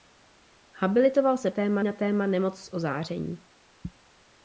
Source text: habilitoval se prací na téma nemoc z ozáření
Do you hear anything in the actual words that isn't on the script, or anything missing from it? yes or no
yes